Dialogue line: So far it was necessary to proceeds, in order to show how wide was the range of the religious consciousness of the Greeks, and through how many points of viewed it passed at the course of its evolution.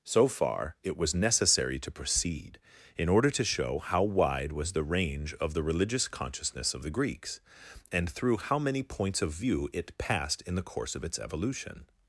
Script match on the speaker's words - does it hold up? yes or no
no